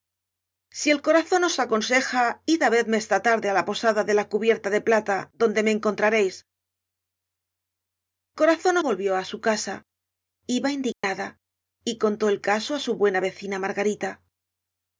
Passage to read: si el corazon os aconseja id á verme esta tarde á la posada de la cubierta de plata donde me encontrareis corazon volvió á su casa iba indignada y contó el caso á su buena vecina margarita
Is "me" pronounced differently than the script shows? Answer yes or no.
no